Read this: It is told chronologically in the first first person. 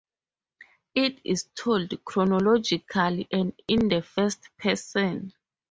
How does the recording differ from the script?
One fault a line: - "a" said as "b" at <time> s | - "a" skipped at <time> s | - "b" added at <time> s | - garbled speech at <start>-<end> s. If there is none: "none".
- "and" added at 3.3 s
- "first" skipped at 4.5 s